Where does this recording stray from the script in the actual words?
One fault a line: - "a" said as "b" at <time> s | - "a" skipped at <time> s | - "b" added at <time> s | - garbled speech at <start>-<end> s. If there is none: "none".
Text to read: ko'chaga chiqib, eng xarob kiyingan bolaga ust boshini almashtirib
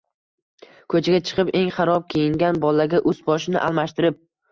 none